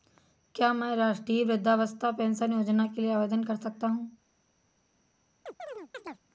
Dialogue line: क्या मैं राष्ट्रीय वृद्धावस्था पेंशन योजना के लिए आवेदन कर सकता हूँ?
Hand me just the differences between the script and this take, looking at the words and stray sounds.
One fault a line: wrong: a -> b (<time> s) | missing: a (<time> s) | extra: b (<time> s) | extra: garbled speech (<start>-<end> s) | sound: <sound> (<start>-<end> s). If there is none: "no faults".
sound: chirp (5.5-6.2 s)